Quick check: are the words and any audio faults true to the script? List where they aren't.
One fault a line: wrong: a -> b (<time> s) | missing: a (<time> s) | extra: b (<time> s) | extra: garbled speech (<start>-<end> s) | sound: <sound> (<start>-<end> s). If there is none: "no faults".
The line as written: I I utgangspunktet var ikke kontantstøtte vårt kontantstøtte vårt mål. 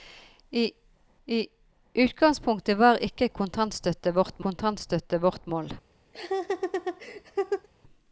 sound: laugh (6.1-7.7 s)